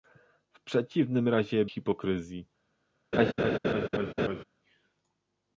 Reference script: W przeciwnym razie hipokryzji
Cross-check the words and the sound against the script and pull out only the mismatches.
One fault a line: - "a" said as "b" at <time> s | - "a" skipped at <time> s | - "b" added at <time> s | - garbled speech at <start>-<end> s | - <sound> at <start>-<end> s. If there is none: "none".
- laugh at 3.1-4.4 s